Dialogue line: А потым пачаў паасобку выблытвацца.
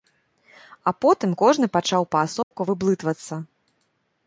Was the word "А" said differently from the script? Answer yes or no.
no